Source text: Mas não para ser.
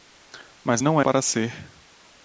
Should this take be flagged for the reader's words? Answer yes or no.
no